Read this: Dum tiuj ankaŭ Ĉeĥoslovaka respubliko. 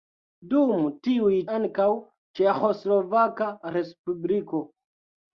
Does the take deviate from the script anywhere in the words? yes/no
no